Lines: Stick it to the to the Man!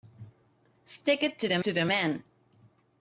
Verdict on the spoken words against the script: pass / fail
pass